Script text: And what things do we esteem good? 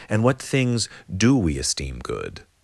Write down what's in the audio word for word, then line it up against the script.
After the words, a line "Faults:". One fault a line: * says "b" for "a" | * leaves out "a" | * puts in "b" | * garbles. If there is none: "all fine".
And what things do we esteem good?
Faults:
all fine